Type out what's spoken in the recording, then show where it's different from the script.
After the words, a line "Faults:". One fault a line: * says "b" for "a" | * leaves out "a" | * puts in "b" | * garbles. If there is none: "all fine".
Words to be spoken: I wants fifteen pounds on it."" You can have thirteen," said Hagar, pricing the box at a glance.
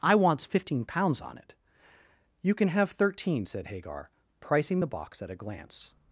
I wants fifteen pounds on it."" You can have thirteen," said Hagar, pricing the box at a glance.
Faults:
all fine